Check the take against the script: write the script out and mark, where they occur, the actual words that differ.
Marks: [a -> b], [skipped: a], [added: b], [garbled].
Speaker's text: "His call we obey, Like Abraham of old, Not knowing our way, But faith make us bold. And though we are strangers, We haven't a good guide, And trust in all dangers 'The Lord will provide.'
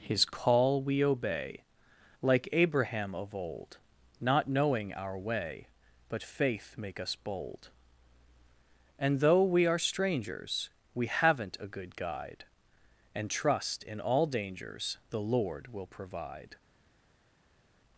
"His call we obey, Like Abraham of old, Not knowing our way, But faith make us bold. And though we are strangers, We haven't a good guide, And trust in all dangers 'The Lord will provide.'